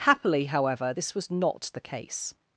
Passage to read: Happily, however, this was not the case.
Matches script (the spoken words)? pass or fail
pass